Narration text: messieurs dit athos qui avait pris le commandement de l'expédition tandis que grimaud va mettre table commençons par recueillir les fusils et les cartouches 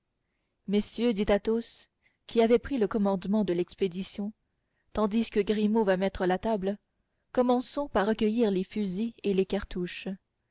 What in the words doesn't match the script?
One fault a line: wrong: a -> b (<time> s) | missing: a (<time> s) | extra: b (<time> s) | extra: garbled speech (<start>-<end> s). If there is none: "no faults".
extra: la (6.2 s)